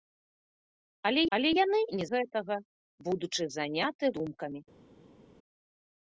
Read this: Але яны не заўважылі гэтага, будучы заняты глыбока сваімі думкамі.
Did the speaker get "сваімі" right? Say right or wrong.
wrong